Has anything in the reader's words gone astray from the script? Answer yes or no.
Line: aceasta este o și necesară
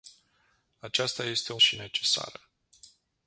no